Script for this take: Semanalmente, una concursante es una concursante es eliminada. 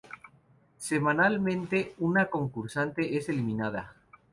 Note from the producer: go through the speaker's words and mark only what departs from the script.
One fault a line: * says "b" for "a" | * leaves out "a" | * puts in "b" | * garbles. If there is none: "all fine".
* leaves out "una concursante es"